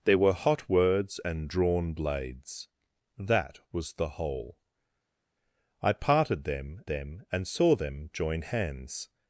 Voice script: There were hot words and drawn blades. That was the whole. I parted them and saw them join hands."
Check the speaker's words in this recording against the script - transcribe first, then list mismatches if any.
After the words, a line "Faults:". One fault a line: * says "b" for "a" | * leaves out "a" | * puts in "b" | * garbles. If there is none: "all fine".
There were hot words and drawn blades. That was the whole. I parted them them and saw them join hands."
Faults:
* puts in "them"